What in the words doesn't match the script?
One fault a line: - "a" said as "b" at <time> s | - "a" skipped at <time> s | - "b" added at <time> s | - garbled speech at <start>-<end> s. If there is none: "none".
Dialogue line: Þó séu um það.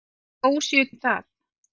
none